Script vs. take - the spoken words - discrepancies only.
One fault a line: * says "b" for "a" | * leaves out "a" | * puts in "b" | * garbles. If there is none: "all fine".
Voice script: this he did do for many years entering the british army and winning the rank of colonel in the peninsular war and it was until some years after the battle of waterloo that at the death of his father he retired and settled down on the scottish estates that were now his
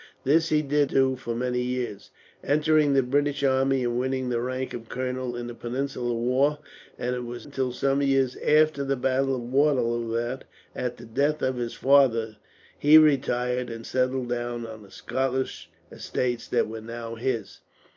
all fine